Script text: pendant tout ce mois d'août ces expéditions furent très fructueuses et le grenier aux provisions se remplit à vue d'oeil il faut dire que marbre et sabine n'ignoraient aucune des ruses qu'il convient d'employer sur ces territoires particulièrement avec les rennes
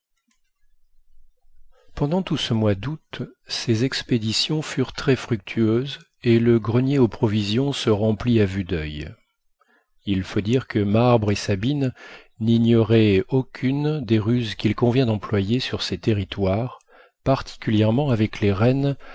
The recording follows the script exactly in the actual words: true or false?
true